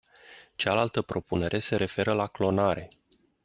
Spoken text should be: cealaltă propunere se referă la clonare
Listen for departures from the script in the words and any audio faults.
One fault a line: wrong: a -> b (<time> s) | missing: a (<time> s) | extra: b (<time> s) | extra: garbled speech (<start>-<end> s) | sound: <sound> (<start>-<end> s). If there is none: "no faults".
no faults